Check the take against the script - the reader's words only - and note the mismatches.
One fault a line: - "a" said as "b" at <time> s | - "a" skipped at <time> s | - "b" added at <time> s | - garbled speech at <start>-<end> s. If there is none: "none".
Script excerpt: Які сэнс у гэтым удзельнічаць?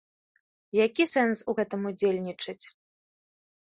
none